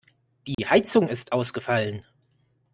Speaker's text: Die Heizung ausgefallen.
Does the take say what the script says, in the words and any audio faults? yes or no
no